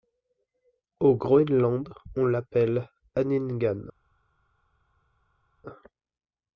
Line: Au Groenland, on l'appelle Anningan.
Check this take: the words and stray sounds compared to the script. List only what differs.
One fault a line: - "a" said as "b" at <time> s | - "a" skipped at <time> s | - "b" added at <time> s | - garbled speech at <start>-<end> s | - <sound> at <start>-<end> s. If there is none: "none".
none